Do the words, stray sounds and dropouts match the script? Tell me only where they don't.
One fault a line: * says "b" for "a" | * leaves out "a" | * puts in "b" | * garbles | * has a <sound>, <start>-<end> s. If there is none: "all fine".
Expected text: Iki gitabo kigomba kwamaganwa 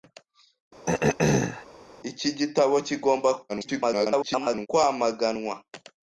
* has a throat clearing, 0.9-1.6 s
* garbles